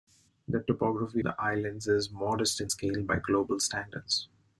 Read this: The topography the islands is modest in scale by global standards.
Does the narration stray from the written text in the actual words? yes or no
no